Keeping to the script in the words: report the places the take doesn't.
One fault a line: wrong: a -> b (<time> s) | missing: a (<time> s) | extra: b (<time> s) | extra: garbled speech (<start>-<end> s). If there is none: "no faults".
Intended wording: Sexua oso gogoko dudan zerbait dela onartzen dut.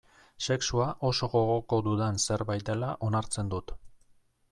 no faults